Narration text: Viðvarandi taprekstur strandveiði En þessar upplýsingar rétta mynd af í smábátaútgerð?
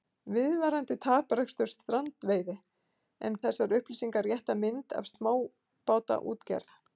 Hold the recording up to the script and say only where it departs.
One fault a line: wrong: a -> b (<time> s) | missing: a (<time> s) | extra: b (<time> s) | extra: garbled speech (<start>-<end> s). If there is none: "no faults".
no faults